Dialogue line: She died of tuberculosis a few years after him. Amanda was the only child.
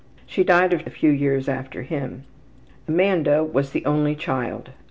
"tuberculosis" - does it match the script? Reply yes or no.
no